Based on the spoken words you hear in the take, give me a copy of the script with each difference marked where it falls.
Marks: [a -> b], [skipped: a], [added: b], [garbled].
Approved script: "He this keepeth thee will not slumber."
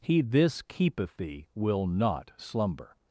"He this keepeth thee will not slumber."